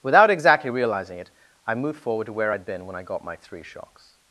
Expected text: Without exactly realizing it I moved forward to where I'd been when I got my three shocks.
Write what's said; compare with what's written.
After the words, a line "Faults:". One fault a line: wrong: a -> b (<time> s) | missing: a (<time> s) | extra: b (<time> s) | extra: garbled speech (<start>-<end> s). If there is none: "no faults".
Without exactly realizing it I moved forward to where I'd been when I got my three shocks.
Faults:
no faults